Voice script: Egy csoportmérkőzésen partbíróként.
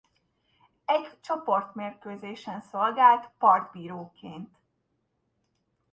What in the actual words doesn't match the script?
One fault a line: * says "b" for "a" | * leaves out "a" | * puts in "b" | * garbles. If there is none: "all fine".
* puts in "szolgált"